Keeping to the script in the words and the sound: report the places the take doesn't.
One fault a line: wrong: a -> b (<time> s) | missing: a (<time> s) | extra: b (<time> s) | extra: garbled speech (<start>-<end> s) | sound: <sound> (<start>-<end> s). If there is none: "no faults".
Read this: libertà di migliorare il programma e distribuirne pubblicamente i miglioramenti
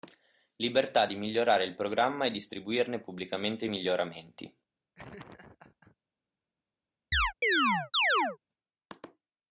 sound: laugh (4.9-6.0 s)
sound: chirp (7.1-8.4 s)